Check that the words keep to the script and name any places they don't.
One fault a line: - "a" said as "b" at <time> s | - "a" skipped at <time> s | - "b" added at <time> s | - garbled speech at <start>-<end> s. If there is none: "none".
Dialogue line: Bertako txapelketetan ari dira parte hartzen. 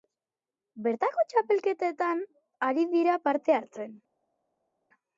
none